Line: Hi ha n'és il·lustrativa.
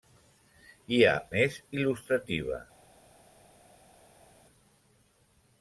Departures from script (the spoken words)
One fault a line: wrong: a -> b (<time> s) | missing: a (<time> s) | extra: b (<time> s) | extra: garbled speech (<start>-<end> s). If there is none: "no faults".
no faults